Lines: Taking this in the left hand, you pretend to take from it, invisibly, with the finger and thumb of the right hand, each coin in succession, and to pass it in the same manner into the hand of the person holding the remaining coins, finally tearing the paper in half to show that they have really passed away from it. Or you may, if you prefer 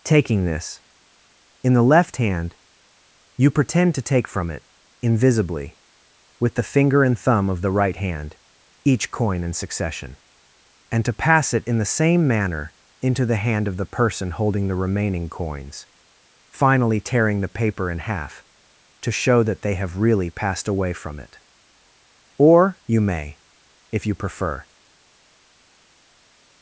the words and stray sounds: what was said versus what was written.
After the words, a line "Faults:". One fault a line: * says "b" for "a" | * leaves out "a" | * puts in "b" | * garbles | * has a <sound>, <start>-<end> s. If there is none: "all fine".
Taking this in the left hand, you pretend to take from it, invisibly, with the finger and thumb of the right hand, each coin in succession, and to pass it in the same manner into the hand of the person holding the remaining coins, finally tearing the paper in half to show that they have really passed away from it. Or you may, if you prefer
Faults:
all fine